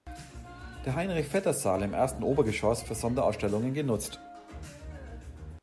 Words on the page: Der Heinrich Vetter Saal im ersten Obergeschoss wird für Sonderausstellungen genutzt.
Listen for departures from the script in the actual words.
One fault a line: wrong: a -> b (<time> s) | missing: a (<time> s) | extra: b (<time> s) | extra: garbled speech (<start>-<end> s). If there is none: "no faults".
missing: wird (2.9 s)